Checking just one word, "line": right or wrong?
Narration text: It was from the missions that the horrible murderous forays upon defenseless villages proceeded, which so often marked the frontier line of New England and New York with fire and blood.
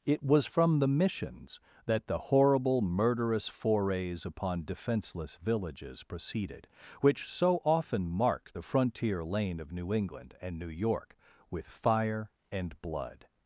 wrong